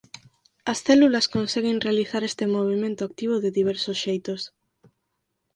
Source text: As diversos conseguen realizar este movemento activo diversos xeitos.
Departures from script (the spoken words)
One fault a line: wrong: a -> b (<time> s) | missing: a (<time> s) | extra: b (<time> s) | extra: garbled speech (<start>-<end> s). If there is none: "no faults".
wrong: diversos -> células (0.9 s)
extra: de (3.4 s)